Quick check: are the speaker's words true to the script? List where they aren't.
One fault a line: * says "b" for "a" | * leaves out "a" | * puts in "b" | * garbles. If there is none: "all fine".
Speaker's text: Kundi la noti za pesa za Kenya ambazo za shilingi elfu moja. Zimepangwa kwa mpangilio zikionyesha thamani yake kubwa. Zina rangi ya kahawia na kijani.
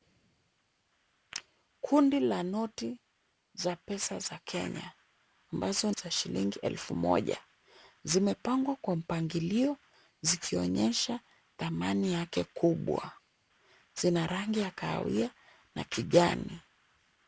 all fine